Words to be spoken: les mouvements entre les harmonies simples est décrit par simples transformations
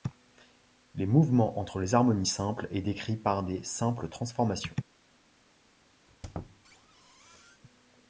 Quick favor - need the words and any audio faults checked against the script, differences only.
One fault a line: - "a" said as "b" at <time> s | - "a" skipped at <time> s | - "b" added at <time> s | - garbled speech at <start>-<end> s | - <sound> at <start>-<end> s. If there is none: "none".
- "des" added at 3.4 s
- squeak at 6.1-7.6 s